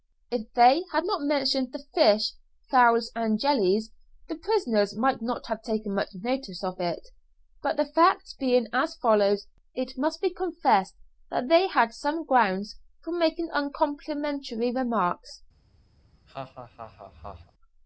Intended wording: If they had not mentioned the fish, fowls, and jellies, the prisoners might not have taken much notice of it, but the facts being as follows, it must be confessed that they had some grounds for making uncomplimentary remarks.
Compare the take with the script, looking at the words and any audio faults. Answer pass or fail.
fail